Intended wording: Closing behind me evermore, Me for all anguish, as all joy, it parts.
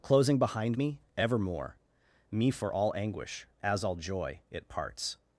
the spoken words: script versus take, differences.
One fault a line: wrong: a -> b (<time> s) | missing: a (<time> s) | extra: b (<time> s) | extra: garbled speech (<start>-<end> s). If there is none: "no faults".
no faults